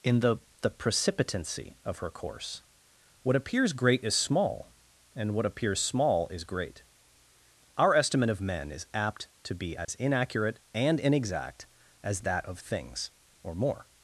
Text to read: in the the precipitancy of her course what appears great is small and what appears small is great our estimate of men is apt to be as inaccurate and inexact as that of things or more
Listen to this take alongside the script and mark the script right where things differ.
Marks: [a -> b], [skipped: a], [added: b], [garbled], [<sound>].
in the the precipitancy of her course what appears great is small and what appears small is great our estimate of men is apt to be as [dropout] inaccurate and inexact as that of things or more